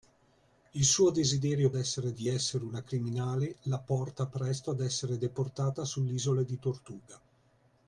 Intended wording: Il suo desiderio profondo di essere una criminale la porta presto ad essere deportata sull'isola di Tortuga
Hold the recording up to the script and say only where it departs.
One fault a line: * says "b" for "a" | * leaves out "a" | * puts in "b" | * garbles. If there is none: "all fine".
* says "essere" for "profondo"